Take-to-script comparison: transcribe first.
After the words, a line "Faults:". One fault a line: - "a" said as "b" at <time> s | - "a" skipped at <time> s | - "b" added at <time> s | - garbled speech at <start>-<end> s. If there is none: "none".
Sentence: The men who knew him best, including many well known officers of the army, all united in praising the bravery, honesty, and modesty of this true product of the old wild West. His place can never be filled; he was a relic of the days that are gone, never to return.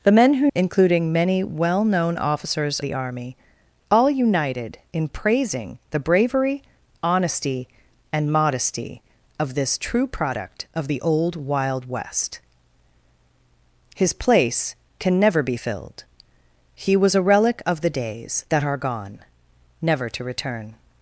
The men who including many well known officers the army, all united in praising the bravery, honesty, and modesty of this true product of the old wild West. His place can never be filled; he was a relic of the days that are gone, never to return.
Faults:
- "knew him best" skipped at 0.5 s
- "of" skipped at 2.8 s